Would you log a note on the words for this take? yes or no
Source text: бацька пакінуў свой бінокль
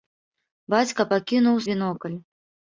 yes